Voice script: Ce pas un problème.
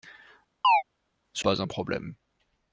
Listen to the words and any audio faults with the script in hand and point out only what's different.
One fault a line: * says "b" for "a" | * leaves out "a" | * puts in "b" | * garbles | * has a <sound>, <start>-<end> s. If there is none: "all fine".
* has a chirp, 0.6-0.8 s